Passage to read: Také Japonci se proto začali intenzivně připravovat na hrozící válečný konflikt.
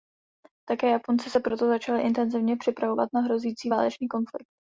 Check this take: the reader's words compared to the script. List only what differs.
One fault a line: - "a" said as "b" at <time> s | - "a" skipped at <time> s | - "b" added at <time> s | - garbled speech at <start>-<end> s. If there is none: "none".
none